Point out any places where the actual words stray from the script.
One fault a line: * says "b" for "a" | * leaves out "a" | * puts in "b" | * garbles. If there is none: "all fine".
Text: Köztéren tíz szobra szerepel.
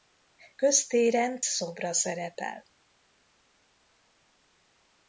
* leaves out "tíz"